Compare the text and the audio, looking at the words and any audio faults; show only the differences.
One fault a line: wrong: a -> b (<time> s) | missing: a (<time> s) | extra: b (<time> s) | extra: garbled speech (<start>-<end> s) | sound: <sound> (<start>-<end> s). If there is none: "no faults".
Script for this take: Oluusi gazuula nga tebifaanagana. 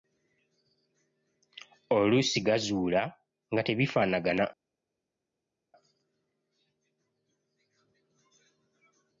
no faults